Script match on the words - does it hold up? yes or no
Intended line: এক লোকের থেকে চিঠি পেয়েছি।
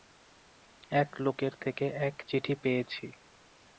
no